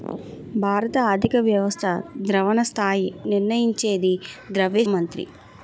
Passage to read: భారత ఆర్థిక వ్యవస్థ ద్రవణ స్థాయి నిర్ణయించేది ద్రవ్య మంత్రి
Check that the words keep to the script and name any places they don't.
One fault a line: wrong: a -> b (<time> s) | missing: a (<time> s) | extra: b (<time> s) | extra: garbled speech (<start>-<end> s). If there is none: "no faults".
no faults